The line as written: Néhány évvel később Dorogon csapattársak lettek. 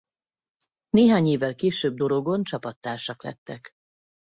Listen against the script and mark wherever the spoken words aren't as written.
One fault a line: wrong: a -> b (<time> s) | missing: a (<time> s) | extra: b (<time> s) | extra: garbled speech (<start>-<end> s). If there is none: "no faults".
no faults